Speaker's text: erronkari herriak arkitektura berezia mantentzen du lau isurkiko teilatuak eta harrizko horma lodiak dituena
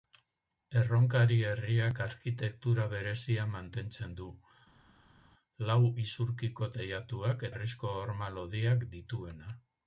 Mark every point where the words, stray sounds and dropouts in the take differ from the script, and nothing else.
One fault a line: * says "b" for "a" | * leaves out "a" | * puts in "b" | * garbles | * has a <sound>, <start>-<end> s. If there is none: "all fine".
* leaves out "eta"